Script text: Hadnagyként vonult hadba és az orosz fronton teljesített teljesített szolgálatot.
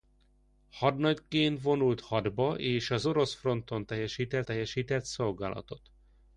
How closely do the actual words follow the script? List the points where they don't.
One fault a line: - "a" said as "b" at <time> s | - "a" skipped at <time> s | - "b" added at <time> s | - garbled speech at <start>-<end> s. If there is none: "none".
none